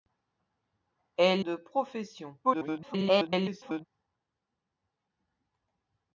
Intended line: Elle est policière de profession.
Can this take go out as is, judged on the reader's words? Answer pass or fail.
fail